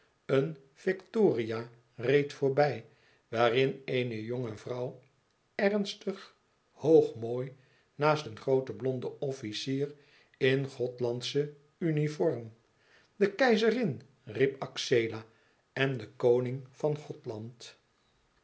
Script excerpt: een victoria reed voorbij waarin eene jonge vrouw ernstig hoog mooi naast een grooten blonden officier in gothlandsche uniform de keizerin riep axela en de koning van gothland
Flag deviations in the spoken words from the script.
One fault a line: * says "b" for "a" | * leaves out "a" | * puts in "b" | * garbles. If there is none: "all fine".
all fine